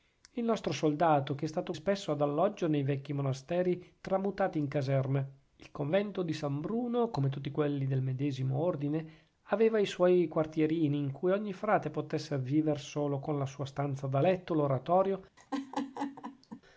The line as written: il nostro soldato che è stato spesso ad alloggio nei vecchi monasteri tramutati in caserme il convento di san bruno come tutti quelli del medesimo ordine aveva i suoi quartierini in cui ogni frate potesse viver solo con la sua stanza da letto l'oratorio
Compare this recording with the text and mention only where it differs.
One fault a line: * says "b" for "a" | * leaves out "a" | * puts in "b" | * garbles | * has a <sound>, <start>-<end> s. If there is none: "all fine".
* has a laugh, 15.4-16.6 s